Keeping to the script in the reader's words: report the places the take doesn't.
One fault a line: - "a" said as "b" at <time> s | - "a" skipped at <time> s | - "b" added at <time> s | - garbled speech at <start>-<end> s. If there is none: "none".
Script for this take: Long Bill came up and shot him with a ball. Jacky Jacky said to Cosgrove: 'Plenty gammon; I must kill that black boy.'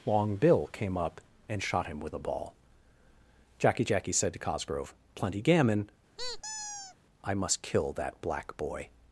none